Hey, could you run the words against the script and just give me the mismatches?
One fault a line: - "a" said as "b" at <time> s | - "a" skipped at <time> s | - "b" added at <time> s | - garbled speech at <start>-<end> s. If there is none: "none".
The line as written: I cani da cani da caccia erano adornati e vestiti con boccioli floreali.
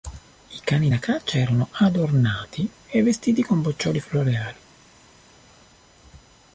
- "cani da" skipped at 1.0 s